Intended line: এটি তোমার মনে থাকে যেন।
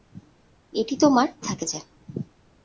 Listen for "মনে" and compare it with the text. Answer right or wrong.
wrong